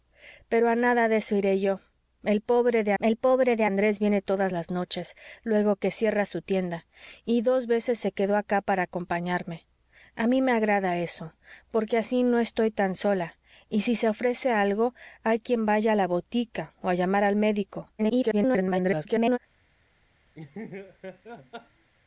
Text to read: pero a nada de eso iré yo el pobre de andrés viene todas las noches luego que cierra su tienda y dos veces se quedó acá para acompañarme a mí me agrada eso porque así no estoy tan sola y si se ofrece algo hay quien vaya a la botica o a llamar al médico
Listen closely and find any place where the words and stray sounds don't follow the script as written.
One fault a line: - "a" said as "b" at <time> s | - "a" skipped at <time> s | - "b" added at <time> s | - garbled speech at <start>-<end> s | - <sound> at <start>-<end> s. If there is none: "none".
- "el pobre de" added at 3.0 s
- garbled speech at 18.0-19.4 s
- laugh at 20.3-21.9 s